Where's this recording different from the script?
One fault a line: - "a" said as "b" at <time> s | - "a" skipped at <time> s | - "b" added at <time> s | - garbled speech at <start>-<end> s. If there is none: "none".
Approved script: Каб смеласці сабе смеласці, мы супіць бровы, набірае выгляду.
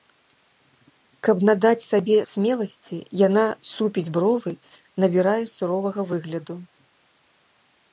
- "смеласці" said as "надаць" at 1.5 s
- "мы" said as "яна" at 3.3 s
- "суровага" added at 5.6 s